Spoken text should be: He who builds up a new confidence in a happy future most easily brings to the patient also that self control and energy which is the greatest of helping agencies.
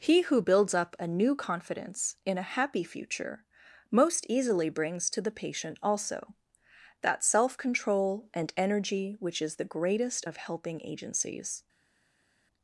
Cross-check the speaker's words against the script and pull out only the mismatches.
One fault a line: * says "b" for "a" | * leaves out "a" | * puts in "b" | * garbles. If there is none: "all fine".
all fine